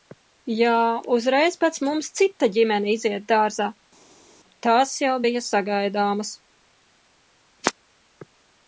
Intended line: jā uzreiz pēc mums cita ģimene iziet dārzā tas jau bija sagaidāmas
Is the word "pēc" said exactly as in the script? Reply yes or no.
yes